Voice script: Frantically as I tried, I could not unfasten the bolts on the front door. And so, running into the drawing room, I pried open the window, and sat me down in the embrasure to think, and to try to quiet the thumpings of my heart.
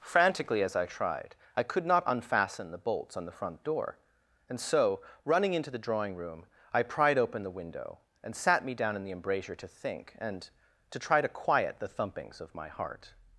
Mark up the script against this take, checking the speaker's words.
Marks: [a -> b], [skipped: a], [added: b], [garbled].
Frantically as I tried, I could not unfasten the bolts on the front door. And so, running into the drawing room, I pried open the window, and sat me down in the embrasure to think, and to try to quiet the thumpings of my heart.